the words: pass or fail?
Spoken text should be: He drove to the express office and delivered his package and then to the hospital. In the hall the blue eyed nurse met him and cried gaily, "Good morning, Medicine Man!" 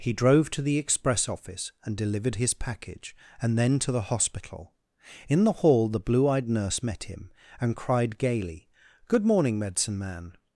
pass